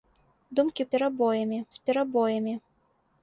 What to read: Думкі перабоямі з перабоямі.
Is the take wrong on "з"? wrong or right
right